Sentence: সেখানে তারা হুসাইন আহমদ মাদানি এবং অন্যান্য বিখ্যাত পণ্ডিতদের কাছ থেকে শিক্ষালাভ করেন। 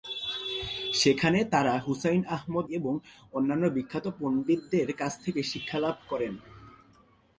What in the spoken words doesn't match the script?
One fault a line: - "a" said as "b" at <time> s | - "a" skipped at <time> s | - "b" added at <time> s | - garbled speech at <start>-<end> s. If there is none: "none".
- "মাদানি" skipped at 2.6 s